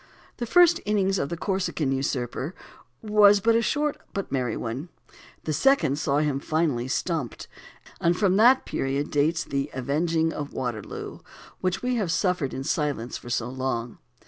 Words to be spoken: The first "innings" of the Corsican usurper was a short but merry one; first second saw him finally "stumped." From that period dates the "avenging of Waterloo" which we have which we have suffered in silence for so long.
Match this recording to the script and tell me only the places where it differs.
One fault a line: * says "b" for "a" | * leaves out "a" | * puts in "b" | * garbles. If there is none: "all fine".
* says "the" for "first"
* puts in "And"
* leaves out "which we have"